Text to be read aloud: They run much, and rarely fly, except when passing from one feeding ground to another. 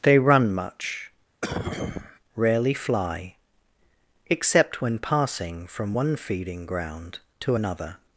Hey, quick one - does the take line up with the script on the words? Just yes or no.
no